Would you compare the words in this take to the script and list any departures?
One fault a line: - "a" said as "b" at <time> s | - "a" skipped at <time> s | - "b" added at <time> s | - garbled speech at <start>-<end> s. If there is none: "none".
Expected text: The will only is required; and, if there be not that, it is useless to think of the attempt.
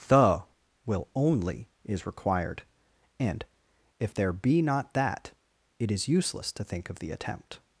none